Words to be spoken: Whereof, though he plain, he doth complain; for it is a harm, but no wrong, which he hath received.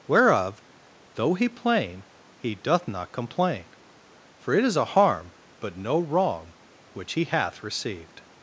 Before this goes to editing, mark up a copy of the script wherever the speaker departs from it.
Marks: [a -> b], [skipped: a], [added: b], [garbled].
Whereof, though he plain, he doth [added: not] complain; for it is a harm, but no wrong, which he hath received.